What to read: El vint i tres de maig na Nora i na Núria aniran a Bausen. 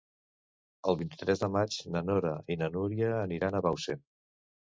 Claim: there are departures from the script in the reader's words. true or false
false